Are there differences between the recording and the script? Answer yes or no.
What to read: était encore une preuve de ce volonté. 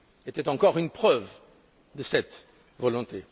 yes